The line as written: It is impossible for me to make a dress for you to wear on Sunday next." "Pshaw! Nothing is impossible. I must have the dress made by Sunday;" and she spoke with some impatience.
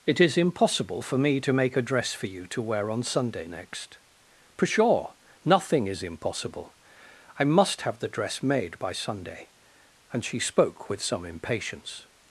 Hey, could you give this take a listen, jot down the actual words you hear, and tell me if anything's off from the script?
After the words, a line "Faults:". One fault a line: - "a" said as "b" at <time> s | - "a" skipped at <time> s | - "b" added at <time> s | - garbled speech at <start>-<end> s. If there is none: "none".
It is impossible for me to make a dress for you to wear on Sunday next." "Pshaw! Nothing is impossible. I must have the dress made by Sunday;" and she spoke with some impatience.
Faults:
none